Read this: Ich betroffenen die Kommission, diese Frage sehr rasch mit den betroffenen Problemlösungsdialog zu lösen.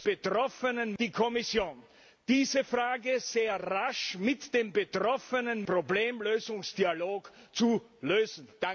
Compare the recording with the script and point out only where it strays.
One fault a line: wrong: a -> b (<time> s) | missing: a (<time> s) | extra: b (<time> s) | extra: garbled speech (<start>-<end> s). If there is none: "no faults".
no faults